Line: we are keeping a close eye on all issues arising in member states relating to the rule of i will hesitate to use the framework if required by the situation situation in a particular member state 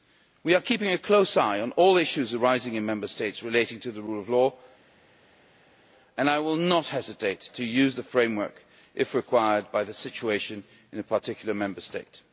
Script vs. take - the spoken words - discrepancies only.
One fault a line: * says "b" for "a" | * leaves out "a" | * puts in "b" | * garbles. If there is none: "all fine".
* puts in "law and"
* puts in "not"
* leaves out "situation"